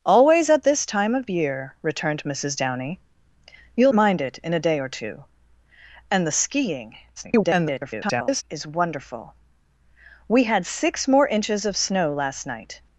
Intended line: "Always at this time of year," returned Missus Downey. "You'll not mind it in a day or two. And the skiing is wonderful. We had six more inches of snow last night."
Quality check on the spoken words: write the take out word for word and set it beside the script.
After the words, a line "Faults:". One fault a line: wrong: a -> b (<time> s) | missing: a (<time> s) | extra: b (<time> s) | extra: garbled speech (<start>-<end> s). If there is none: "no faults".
"Always at this time of year," returned Missus Downey. "You'll mind it in a day or two. And the skiing [garbled] is wonderful. We had six more inches of snow last night."
Faults:
missing: not (3.9 s)
extra: garbled speech (7.2-8.4 s)